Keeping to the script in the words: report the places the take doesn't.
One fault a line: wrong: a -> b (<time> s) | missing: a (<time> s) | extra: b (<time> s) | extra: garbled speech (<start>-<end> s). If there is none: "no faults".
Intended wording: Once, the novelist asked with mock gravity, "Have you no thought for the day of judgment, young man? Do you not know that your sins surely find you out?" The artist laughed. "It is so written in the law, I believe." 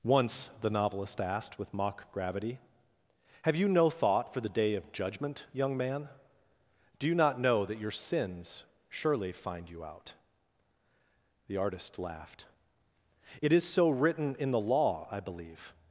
no faults